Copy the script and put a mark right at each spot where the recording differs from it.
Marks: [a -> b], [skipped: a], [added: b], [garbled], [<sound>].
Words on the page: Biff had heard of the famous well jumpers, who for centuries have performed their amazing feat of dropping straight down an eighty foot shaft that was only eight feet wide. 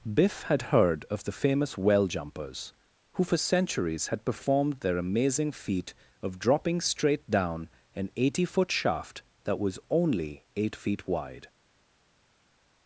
Biff had heard of the famous well jumpers, who for centuries [have -> had] performed their amazing feat of dropping straight down an eighty foot shaft that was only eight feet wide.